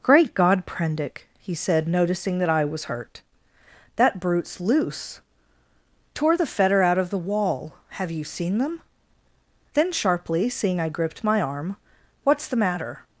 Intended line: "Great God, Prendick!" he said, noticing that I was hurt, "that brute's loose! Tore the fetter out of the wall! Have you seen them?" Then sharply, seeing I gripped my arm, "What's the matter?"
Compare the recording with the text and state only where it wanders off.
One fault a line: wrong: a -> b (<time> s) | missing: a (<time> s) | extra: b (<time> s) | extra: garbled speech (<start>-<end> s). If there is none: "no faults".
no faults